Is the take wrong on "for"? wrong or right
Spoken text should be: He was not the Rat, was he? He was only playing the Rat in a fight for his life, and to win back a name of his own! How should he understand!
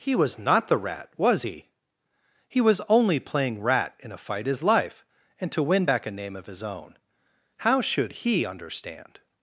wrong